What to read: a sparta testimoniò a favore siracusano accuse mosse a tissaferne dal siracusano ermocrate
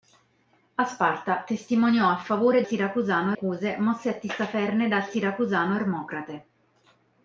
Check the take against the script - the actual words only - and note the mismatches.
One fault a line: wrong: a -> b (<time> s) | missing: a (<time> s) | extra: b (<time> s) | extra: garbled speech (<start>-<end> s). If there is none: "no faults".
no faults